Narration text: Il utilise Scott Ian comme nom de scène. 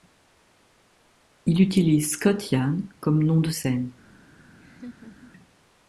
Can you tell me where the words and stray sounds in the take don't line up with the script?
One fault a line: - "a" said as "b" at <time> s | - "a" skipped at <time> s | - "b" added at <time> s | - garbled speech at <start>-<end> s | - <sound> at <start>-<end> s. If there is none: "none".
- laugh at 4.6-5.3 s